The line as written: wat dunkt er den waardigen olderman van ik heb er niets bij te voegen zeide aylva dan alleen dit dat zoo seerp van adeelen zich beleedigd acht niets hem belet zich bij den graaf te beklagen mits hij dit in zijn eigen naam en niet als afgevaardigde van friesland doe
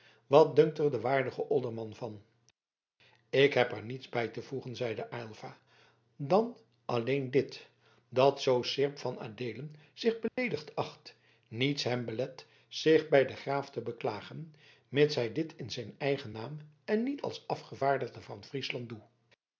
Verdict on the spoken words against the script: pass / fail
pass